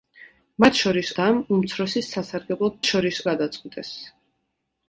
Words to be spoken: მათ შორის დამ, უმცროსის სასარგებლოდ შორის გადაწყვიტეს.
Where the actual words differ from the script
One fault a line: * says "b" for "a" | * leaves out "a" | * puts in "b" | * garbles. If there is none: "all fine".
all fine